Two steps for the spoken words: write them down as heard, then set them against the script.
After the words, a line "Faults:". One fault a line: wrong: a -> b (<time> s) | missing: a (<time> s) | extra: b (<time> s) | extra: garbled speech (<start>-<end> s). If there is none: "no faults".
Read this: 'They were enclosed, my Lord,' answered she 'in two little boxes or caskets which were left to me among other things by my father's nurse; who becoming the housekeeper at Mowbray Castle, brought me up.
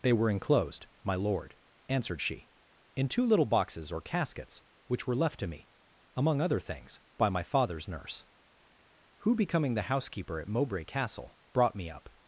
'They were enclosed, my Lord,' answered she 'in two little boxes or caskets which were left to me among other things by my father's nurse; who becoming the housekeeper at Mowbray Castle, brought me up.
Faults:
no faults